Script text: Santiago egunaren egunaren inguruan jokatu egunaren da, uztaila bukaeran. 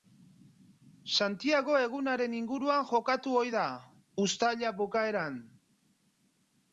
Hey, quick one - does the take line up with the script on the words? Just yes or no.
no